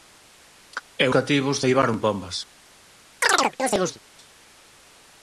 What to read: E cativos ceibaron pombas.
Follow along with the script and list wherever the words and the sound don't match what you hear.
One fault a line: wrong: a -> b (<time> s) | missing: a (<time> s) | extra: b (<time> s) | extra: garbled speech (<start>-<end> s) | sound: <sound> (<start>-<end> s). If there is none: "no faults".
sound: chirp (3.2-4.0 s)